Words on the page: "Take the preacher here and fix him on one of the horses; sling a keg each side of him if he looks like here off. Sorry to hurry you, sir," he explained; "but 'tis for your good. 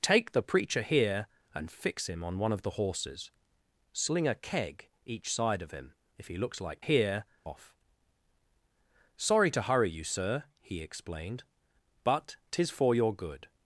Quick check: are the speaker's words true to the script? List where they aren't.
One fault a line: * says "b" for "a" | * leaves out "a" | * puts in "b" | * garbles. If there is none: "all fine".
all fine